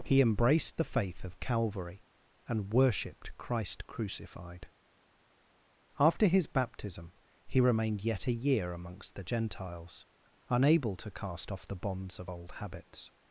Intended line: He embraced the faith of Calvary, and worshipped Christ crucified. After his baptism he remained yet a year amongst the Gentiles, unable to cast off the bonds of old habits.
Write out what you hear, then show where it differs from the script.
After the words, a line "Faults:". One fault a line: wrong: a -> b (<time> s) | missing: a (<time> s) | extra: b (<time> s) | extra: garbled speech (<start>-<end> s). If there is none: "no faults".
He embraced the faith of Calvary, and worshipped Christ crucified. After his baptism he remained yet a year amongst the Gentiles, unable to cast off the bonds of old habits.
Faults:
no faults